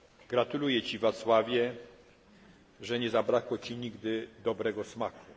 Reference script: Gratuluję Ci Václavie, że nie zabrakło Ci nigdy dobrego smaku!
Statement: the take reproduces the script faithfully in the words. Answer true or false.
true